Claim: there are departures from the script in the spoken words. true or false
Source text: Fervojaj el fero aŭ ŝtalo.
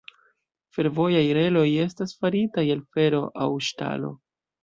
true